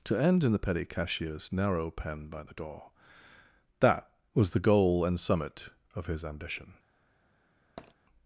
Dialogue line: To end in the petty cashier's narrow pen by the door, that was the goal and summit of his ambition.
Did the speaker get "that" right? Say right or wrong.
right